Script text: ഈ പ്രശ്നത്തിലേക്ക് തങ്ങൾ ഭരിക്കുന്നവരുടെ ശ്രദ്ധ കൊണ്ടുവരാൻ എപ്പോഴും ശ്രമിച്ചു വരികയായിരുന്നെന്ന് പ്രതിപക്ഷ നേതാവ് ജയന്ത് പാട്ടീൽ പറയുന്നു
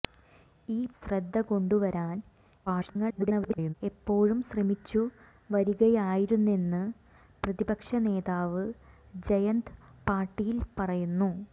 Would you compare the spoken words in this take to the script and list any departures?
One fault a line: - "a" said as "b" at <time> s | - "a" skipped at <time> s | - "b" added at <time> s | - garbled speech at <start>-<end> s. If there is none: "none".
- "പ്രശ്നത്തിലേക്ക് തങ്ങൾ ഭരിക്കുന്നവരുടെ" skipped at 0.9 s
- garbled speech at 2.7-3.7 s